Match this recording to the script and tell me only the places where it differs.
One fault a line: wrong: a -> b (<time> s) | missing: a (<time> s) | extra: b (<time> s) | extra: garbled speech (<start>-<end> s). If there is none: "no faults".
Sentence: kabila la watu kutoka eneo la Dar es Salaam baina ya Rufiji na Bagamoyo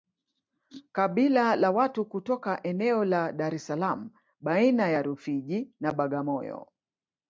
no faults